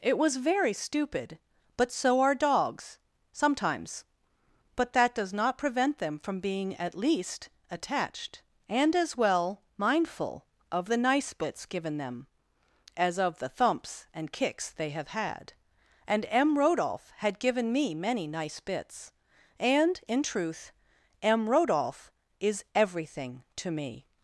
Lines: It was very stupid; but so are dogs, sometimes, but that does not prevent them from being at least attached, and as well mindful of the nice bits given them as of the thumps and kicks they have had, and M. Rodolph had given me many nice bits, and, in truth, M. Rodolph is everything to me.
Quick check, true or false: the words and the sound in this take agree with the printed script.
true